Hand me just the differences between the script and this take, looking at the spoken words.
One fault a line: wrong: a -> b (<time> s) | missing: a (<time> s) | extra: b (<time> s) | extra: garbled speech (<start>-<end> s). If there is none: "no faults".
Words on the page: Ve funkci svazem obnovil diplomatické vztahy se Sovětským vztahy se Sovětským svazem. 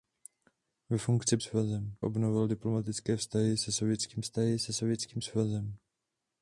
no faults